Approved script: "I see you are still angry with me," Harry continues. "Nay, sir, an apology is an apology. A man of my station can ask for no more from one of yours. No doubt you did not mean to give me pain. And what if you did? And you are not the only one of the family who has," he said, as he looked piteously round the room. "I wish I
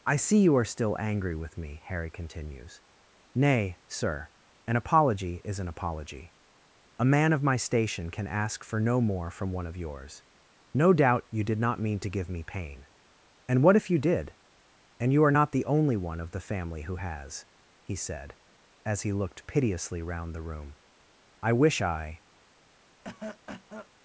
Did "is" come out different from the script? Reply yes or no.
no